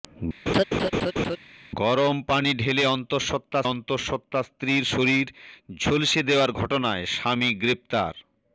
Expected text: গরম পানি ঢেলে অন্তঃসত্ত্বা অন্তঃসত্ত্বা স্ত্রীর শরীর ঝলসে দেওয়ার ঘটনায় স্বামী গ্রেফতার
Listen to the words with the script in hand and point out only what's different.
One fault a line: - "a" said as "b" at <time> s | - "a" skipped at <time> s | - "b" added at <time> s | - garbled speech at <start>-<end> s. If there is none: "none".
none